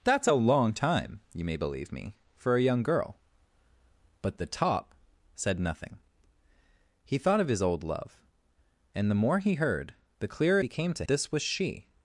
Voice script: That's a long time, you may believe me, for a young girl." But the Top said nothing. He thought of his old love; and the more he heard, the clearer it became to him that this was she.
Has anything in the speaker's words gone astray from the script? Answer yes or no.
yes